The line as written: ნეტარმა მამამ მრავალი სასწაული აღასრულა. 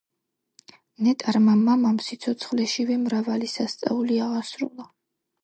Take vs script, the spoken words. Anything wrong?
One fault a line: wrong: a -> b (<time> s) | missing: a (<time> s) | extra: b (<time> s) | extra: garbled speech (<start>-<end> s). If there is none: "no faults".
extra: სიცოცხლეშივე (2.1 s)